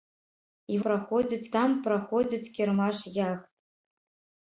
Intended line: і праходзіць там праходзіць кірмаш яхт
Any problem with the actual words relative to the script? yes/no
no